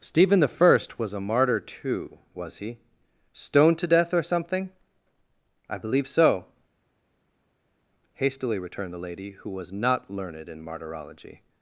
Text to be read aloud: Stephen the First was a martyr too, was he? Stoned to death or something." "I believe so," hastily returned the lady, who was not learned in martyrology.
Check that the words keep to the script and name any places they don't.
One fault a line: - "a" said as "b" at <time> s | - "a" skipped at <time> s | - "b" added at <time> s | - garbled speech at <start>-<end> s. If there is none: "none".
none